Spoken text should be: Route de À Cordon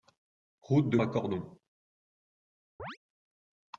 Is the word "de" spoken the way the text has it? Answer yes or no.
yes